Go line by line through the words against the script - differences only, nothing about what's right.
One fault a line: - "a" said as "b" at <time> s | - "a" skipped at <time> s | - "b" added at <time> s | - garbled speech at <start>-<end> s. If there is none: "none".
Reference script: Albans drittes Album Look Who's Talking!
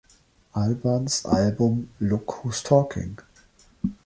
- "drittes" skipped at 1.2 s